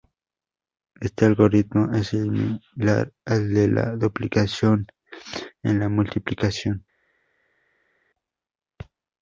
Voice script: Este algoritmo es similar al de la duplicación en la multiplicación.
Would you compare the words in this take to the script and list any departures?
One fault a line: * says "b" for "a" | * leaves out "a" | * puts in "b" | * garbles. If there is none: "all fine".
all fine